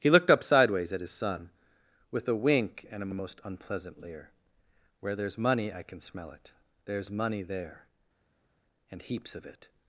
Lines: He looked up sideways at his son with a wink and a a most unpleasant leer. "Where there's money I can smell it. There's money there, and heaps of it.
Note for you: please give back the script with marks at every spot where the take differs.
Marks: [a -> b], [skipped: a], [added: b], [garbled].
He looked up sideways at his son with a wink and a a most unpleasant leer. "Where there's money I can smell it. There's money there, and heaps of it.